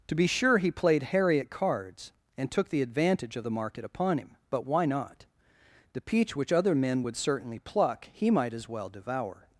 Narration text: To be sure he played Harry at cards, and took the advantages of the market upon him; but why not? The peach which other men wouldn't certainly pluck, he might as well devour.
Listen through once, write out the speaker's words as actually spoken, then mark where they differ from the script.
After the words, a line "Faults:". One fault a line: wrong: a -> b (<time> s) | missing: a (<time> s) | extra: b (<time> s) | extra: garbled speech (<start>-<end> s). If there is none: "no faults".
To be sure he played Harry at cards, and took the advantage of the market upon him; but why not? The peach which other men would certainly pluck, he might as well devour.
Faults:
wrong: advantages -> advantage (2.8 s)
wrong: wouldn't -> would (7.0 s)